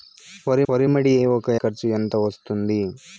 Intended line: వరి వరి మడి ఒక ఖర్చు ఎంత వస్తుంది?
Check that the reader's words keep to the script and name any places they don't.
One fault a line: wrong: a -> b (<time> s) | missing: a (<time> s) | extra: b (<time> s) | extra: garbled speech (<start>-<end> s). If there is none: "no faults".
no faults